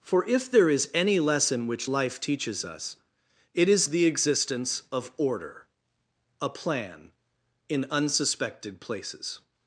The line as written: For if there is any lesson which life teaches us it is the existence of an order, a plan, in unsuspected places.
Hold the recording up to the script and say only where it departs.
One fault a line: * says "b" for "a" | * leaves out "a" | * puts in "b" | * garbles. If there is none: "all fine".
* leaves out "an"